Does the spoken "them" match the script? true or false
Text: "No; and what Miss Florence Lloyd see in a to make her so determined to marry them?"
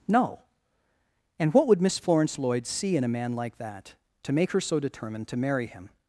false